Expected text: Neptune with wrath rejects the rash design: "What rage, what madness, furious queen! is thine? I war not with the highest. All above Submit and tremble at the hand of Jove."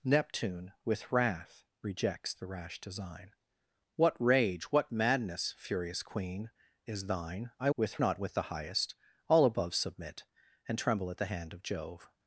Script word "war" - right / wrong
wrong